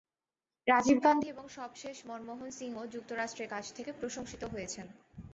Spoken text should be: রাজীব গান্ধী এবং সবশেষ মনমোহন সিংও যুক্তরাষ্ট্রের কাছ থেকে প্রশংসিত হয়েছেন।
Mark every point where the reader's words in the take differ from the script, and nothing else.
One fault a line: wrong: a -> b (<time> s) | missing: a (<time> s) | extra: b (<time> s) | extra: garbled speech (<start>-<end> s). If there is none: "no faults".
no faults